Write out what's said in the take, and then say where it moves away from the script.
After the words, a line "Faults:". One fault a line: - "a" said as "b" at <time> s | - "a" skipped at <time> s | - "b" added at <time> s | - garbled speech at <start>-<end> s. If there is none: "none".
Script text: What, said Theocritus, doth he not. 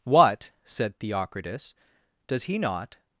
What, said Theocritus, does he not.
Faults:
- "doth" said as "does" at 2.3 s